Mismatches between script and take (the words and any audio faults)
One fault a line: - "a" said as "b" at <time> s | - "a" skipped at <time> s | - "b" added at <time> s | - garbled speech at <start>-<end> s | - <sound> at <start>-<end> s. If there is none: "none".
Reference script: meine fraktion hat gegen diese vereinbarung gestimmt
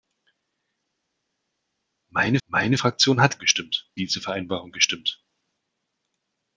- "meine" added at 2.5 s
- "gegen" said as "gestimmt" at 3.4 s